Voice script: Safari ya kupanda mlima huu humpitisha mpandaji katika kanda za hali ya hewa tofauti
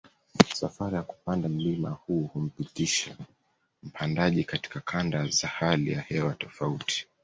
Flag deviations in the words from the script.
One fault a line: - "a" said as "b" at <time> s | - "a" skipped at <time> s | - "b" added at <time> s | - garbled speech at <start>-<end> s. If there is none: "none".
none